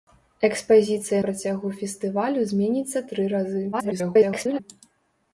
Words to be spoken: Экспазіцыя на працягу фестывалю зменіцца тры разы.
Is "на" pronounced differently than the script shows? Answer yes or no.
yes